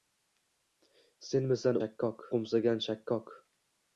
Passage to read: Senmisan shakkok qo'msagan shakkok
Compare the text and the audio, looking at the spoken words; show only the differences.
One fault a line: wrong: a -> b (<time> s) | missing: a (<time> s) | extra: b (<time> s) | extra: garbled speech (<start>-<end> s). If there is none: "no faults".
no faults